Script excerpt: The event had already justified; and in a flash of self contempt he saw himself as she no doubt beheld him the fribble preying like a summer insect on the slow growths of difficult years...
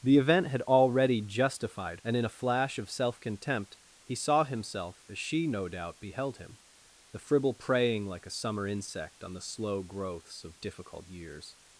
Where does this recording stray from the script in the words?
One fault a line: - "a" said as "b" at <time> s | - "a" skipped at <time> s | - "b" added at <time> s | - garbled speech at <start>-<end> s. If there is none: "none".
none